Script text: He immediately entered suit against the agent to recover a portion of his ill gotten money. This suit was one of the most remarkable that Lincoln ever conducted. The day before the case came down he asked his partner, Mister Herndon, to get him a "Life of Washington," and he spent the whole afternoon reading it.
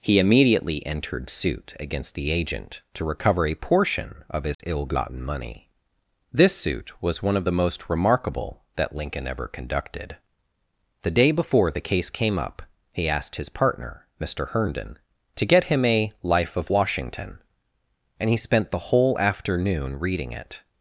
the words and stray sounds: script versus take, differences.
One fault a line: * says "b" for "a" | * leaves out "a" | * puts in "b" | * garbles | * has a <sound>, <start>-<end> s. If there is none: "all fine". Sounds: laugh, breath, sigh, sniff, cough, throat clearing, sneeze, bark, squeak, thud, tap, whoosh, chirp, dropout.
* has a dropout, 4.5-4.6 s
* says "up" for "down"